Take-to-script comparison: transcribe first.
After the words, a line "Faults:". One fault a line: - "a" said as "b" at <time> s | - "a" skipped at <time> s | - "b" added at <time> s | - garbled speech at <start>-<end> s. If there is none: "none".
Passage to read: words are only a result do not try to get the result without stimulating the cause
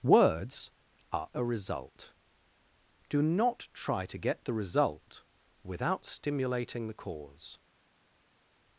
words are a result do not try to get the result without stimulating the cause
Faults:
- "only" skipped at 1.3 s